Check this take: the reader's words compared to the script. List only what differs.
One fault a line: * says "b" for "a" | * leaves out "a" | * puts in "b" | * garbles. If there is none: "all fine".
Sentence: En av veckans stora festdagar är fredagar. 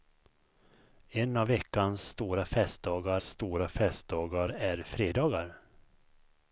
* puts in "stora festdagar"